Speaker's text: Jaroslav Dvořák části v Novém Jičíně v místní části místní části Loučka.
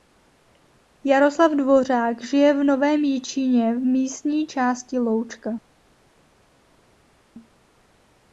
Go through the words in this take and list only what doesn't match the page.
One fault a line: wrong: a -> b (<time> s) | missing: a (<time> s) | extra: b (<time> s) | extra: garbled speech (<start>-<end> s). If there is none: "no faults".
wrong: části -> žije (2.2 s)
missing: místní části (5.0 s)